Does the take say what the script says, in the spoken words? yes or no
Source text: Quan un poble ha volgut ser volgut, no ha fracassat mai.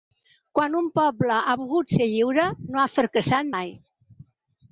no